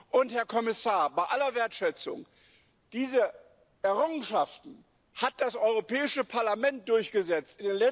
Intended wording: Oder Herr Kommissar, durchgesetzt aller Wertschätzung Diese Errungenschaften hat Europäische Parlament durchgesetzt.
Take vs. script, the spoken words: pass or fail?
fail